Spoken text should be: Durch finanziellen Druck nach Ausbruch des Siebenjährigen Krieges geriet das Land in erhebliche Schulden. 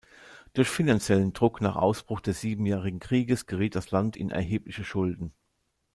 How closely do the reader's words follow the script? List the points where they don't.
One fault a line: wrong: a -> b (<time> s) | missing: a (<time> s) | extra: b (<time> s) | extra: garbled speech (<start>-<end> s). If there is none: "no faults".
no faults